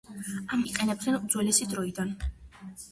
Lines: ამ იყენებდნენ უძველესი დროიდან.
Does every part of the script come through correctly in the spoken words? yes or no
yes